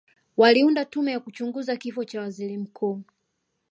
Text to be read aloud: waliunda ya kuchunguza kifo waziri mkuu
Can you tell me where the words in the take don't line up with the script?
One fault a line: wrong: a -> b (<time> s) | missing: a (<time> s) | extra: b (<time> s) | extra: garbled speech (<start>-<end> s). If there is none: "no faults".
extra: tume (0.8 s)
extra: cha (2.0 s)